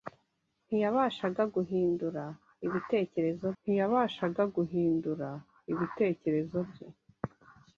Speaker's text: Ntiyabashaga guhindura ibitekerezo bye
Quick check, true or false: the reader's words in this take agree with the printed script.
false